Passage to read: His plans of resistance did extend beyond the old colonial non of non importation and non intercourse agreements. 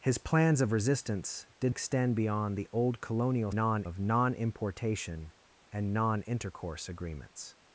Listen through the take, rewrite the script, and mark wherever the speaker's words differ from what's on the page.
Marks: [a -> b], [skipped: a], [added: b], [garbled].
His plans of resistance did extend beyond the old colonial non of non importation and non intercourse agreements.